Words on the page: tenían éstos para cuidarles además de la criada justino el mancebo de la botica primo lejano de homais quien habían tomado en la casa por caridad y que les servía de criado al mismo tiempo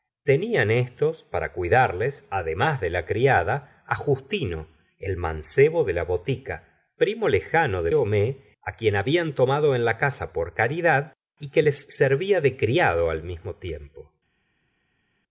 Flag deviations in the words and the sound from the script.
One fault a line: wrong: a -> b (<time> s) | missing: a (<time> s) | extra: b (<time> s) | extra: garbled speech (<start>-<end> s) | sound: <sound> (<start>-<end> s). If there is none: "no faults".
no faults